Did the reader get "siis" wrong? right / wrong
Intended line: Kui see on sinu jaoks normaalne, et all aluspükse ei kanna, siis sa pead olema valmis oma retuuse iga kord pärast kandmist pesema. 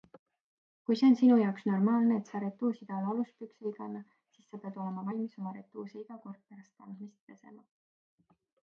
right